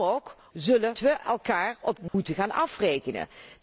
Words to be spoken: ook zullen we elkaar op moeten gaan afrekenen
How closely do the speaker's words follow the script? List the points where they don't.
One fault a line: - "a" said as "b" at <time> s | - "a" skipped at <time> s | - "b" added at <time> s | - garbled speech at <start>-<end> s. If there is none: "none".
none